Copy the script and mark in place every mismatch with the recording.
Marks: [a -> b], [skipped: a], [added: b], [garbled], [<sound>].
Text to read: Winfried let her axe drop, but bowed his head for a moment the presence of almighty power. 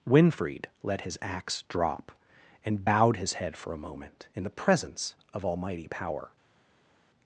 Winfried let [her -> his] axe drop, [but -> and] bowed his head for a moment [added: in] the presence of almighty power.